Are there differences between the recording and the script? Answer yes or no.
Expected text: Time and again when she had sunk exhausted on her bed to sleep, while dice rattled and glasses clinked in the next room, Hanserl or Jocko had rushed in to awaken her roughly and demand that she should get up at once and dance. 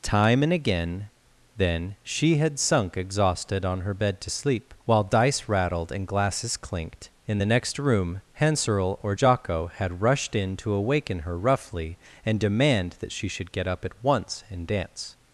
yes